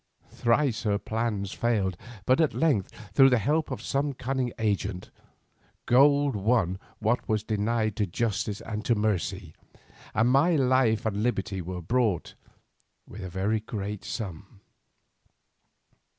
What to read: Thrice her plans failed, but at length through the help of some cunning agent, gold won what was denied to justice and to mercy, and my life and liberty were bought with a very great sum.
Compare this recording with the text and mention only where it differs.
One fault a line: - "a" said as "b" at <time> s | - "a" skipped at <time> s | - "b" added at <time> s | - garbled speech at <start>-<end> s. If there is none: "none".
none